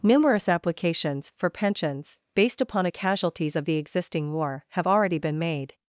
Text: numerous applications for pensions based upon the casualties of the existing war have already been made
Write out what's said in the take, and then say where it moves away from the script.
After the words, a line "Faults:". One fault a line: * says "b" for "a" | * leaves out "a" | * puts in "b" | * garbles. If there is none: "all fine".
numerous applications for pensions based upon a casualties of the existing war have already been made
Faults:
* says "a" for "the"